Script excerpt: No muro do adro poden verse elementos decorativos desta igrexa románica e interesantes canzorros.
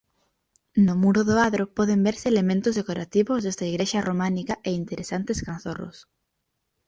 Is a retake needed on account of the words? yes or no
no